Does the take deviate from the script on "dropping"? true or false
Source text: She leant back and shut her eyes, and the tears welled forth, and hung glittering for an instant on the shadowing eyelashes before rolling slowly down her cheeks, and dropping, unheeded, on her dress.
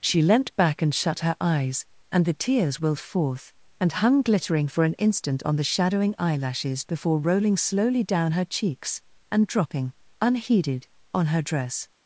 false